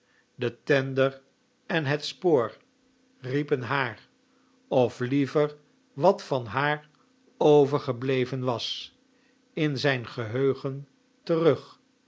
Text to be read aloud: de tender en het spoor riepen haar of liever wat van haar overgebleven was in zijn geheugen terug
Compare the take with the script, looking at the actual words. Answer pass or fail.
pass